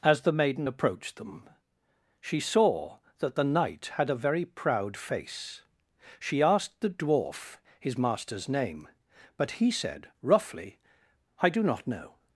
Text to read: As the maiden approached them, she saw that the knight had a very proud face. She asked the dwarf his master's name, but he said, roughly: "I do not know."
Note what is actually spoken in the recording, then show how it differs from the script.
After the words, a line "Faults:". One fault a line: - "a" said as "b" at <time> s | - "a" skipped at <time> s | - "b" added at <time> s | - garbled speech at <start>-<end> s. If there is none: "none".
As the maiden approached them, she saw that the knight had a very proud face. She asked the dwarf his master's name, but he said, roughly: "I do not know."
Faults:
none